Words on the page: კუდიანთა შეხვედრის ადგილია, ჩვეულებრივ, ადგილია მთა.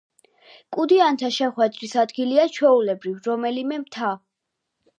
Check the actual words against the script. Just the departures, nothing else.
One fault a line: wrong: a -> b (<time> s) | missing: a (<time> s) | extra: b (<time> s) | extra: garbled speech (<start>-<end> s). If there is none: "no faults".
wrong: ადგილია -> რომელიმე (3.3 s)